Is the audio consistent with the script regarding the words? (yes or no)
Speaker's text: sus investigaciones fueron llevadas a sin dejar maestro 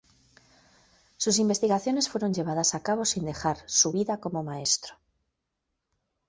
no